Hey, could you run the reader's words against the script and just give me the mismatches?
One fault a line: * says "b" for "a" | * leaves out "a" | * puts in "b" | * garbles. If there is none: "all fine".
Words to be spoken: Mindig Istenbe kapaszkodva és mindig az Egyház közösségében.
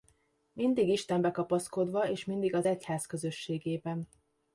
all fine